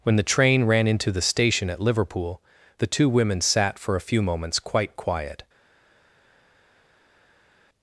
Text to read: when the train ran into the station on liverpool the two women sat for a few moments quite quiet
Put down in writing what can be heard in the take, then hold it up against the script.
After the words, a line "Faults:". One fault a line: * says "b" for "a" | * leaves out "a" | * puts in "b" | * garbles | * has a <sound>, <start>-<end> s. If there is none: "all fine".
when the train ran into the station at liverpool the two women sat for a few moments quite quiet
Faults:
* says "at" for "on"